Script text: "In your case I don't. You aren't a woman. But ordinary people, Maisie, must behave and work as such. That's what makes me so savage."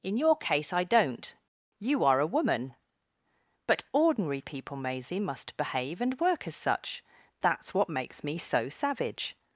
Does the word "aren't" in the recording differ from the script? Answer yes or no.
yes